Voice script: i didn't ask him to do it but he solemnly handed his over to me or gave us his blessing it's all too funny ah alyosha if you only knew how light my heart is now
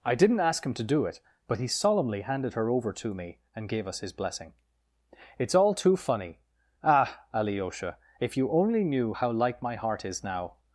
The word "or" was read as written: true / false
false